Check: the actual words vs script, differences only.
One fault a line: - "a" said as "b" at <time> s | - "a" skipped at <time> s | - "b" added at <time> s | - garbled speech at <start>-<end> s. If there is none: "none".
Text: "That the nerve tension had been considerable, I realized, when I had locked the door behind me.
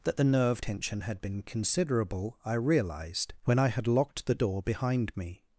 none